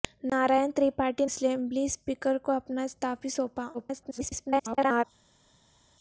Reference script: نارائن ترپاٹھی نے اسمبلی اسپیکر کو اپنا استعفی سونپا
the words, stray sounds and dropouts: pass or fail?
fail